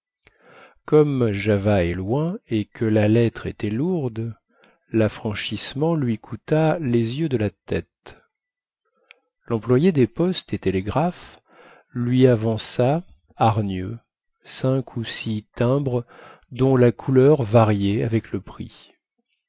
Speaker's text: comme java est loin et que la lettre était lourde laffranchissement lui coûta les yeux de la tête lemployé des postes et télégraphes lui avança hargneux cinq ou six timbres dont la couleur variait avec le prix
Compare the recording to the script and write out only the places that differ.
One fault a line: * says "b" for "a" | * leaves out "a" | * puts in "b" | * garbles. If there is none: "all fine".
all fine